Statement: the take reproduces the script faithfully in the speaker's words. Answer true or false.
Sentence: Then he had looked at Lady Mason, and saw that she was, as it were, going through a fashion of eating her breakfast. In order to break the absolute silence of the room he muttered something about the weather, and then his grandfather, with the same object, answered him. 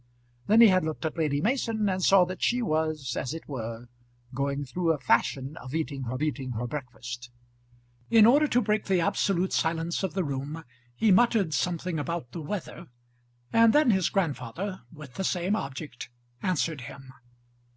false